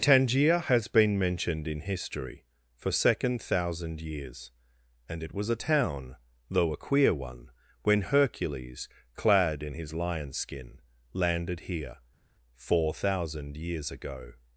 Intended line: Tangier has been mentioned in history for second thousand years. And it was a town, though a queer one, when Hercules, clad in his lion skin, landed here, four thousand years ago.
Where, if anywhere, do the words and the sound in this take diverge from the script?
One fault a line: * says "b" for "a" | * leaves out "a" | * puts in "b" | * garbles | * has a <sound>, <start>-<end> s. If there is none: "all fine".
all fine